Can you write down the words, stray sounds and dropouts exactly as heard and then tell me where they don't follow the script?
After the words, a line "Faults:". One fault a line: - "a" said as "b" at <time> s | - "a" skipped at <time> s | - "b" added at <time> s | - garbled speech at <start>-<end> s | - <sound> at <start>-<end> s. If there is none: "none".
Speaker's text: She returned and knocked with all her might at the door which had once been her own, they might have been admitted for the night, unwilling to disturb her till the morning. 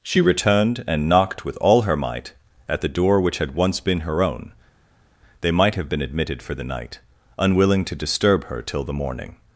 She returned and knocked with all her might at the door which had once been her own, they might have been admitted for the night, unwilling to disturb her till the morning.
Faults:
none